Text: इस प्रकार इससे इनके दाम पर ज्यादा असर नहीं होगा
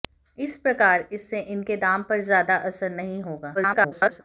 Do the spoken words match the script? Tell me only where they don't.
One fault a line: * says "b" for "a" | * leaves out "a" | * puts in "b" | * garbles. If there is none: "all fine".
* garbles